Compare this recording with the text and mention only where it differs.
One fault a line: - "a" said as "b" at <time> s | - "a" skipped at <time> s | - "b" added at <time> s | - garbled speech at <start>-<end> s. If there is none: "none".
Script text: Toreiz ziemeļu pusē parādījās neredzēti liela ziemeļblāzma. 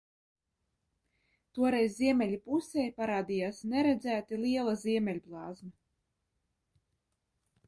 none